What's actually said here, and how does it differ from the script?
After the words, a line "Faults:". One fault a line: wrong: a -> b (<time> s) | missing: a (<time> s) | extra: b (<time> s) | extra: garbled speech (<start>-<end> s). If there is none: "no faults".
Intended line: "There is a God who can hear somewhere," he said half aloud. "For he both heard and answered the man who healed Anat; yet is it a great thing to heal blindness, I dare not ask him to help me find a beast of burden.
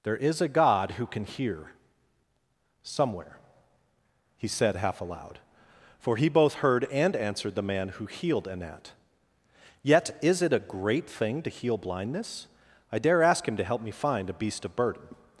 "There is a God who can hear somewhere," he said half aloud. "For he both heard and answered the man who healed Anat; yet is it a great thing to heal blindness, I dare ask him to help me find a beast of burden.
Faults:
missing: not (13.2 s)